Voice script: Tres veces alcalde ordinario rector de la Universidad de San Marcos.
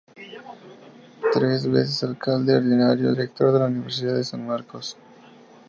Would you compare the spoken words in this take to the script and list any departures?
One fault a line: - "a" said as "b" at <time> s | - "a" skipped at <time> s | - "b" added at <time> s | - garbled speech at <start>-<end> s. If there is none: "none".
none